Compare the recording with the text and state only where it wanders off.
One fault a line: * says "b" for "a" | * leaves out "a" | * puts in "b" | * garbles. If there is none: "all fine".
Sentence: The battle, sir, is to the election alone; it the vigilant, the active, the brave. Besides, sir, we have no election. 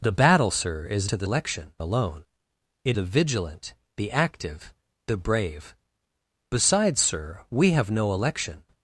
all fine